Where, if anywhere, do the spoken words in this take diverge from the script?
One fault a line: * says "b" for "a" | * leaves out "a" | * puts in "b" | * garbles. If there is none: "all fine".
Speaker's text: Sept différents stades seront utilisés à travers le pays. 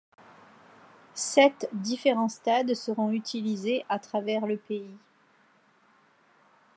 all fine